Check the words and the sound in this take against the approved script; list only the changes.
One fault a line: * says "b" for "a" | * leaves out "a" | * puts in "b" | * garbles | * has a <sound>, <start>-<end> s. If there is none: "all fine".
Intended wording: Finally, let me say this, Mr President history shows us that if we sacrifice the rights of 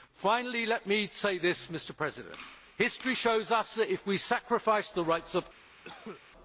* has a cough, 5.8-6.2 s